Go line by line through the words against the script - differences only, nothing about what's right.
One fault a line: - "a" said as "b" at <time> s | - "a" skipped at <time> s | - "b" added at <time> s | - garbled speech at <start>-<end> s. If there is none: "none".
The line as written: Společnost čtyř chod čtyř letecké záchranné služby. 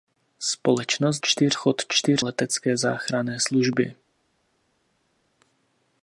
none